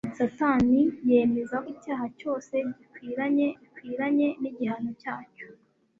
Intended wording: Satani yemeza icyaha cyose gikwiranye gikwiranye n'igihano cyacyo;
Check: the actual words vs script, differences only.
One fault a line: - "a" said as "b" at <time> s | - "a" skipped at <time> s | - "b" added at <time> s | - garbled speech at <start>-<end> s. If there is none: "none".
none